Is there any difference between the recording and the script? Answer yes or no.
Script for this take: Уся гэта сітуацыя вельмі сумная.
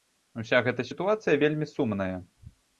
no